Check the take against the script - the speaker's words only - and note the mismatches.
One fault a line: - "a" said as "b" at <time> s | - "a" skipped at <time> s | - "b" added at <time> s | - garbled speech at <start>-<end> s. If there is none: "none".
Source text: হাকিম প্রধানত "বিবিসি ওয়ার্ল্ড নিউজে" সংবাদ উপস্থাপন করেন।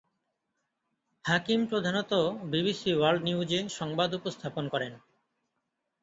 none